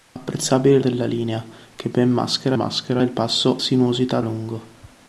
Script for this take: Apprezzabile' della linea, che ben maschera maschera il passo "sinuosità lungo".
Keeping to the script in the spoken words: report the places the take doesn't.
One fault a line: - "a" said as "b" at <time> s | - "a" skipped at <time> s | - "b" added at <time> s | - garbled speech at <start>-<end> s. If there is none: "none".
none